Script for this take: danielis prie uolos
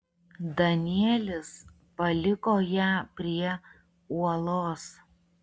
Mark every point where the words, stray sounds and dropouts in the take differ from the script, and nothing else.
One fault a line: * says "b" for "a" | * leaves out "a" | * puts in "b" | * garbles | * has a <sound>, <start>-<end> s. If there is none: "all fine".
* puts in "paliko ją"